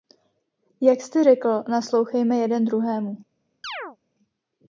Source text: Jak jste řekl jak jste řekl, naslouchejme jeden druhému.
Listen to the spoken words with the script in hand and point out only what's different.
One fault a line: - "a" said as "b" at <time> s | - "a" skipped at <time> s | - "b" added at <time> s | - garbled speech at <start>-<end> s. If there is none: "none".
- "jak jste řekl" skipped at 1.6 s